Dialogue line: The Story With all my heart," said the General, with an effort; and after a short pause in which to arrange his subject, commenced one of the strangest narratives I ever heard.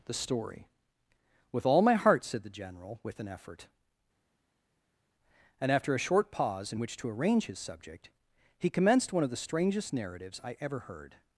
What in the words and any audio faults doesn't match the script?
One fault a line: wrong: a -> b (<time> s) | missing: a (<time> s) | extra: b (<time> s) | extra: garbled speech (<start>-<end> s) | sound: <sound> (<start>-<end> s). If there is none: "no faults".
extra: he (8.6 s)